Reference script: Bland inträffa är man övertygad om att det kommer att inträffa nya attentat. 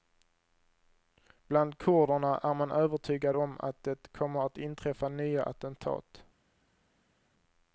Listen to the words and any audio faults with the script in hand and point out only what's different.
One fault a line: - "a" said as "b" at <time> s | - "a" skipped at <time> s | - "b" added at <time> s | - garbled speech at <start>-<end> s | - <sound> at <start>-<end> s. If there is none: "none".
- "inträffa" said as "kurderna" at 1.8 s